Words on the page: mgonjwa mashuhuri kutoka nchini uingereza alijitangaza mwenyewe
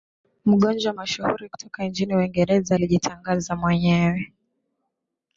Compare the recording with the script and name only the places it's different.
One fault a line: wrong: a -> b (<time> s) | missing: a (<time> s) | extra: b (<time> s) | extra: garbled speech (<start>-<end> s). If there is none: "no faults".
no faults